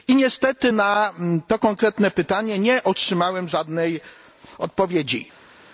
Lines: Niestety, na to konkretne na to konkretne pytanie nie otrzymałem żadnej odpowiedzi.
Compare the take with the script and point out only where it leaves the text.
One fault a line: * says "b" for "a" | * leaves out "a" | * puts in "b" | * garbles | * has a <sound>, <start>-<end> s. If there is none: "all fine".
* leaves out "na to konkretne"